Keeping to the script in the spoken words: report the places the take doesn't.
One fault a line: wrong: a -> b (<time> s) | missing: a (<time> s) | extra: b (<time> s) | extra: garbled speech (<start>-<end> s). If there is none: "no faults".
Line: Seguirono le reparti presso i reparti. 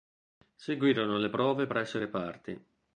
wrong: reparti -> prove (1.3 s)